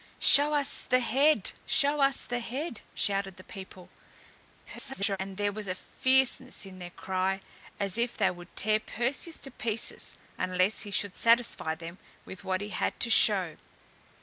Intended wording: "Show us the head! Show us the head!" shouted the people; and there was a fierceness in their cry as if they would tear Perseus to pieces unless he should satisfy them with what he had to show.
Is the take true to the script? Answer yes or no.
no